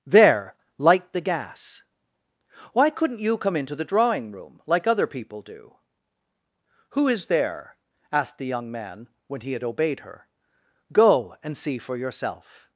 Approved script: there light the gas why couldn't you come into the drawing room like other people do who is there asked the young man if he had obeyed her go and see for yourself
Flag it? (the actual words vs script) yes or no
yes